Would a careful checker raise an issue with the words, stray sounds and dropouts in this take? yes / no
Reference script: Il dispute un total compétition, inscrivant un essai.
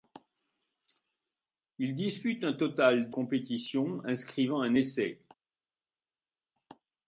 no